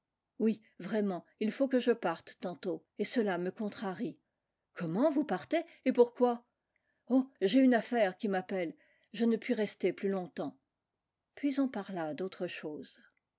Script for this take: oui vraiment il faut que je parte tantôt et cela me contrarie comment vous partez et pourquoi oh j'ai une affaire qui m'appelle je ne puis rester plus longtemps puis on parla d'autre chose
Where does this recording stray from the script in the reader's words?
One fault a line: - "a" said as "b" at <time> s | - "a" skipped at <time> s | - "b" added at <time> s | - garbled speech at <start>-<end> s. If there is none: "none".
none